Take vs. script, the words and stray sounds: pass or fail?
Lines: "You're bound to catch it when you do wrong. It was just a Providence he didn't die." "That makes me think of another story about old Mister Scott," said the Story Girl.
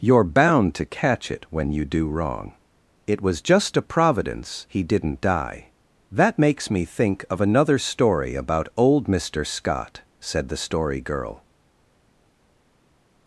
pass